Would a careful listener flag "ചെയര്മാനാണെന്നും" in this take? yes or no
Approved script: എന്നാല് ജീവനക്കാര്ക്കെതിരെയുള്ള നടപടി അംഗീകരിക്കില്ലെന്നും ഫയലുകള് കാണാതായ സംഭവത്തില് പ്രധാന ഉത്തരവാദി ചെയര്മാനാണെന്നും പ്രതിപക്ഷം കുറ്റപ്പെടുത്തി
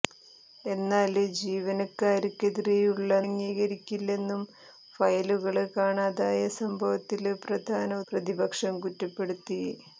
yes